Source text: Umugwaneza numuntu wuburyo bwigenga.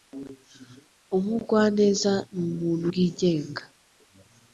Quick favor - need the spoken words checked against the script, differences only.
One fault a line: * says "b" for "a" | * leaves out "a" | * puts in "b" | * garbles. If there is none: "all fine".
* leaves out "wuburyo"